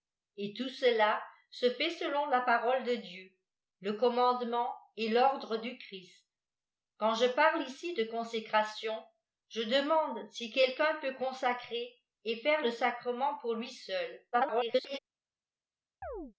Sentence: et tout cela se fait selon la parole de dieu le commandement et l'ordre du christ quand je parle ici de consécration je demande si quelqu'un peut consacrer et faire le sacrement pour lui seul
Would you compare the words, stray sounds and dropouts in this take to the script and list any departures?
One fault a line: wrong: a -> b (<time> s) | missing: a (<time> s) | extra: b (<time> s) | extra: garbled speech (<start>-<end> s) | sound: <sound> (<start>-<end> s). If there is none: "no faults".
extra: garbled speech (14.3-15.0 s)
sound: chirp (16.0-16.3 s)